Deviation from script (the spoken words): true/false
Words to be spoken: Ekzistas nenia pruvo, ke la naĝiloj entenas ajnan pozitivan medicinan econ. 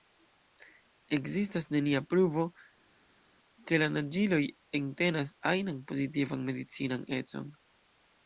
false